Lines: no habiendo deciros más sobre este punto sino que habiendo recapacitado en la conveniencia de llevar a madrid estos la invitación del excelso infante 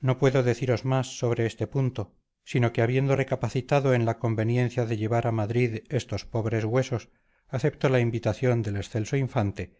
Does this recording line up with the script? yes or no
no